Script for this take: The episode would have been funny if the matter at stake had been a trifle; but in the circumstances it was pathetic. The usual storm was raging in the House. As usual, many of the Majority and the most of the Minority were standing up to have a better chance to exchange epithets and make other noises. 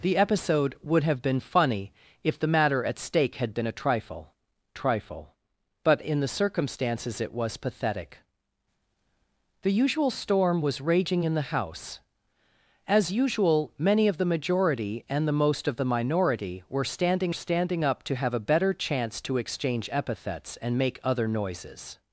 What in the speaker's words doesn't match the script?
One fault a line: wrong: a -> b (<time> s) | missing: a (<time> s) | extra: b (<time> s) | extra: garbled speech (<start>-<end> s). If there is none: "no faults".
extra: trifle (4.8 s)
extra: standing (17.3 s)